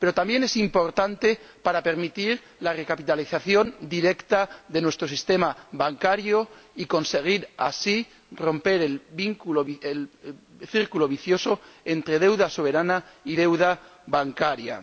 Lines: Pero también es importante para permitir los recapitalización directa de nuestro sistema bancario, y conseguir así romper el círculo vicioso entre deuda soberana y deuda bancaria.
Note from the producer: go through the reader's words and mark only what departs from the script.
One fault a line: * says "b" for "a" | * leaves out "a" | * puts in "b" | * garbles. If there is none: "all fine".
* says "la" for "los"